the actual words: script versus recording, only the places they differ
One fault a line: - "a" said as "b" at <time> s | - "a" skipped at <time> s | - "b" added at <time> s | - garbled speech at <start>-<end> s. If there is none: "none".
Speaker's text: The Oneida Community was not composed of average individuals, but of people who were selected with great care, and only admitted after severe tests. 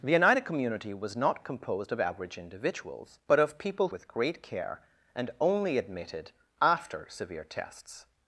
- "who were selected" skipped at 3.9 s